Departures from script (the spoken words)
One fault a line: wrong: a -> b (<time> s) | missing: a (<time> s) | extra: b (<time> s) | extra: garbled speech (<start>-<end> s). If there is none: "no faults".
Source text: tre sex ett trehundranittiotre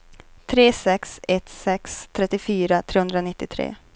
extra: sex trettiofyra (1.5 s)